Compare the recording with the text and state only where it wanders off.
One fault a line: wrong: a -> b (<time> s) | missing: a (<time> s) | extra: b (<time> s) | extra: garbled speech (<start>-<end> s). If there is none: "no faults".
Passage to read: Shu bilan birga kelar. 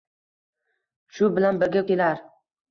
no faults